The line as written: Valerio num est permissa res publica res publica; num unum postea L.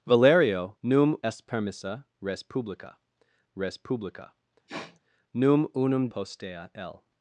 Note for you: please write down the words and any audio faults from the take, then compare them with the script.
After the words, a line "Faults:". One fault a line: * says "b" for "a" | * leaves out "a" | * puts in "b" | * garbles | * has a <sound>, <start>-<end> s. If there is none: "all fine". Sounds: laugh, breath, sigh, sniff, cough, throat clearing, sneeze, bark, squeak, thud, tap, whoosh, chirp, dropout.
Valerio num est permissa res publica res publica; num unum postea L.
Faults:
* has a sniff, 4.7-5.0 s